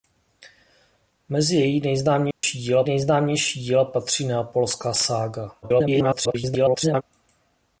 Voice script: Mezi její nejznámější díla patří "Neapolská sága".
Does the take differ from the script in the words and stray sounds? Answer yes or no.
yes